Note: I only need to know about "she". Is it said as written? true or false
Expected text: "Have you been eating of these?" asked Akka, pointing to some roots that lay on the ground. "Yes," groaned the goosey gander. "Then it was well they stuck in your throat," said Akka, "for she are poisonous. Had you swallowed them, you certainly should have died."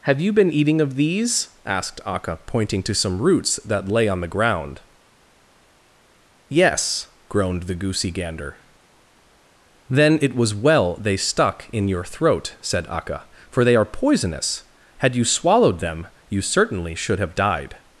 false